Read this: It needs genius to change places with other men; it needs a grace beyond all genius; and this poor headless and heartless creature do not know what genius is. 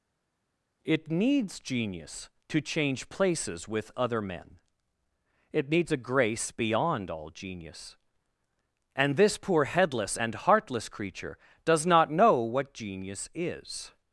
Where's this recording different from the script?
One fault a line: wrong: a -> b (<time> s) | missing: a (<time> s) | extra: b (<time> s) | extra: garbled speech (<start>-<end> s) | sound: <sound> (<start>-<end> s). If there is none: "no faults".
wrong: do -> does (11.6 s)